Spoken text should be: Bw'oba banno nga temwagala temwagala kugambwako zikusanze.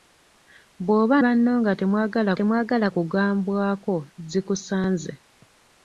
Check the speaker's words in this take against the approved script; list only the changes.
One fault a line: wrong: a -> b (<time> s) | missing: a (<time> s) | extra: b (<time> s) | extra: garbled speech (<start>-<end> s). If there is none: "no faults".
no faults